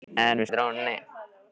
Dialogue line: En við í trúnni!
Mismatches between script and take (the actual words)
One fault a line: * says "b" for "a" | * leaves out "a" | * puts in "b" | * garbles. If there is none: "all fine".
all fine